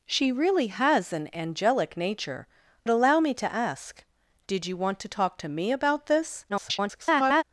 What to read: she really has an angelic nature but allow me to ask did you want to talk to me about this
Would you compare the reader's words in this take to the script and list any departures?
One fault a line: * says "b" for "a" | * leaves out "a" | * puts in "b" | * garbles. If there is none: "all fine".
* leaves out "but"
* garbles